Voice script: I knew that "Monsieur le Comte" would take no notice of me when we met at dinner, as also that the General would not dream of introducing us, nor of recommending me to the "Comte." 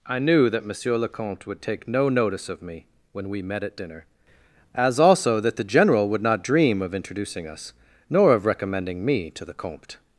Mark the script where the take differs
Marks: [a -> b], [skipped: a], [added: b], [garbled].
I knew that "Monsieur le Comte" would take no notice of me when we met at dinner, as also that the General would not dream of introducing us, nor of recommending me to the "Comte."